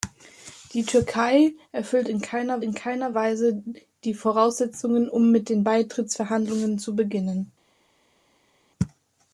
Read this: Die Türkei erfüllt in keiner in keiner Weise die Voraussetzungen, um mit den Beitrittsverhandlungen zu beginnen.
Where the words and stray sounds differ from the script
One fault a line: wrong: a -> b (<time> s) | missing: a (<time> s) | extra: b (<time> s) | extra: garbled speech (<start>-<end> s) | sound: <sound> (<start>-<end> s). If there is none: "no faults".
no faults